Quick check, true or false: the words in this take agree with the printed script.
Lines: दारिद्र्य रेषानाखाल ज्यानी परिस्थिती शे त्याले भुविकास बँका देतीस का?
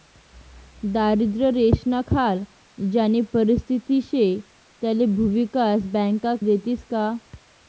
true